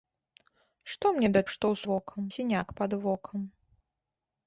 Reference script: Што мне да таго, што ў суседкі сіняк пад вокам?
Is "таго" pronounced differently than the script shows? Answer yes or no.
yes